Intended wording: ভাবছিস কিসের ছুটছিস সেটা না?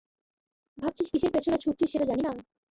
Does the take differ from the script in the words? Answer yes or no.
yes